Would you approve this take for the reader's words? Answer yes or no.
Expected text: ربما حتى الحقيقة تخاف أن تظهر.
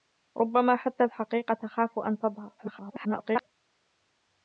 no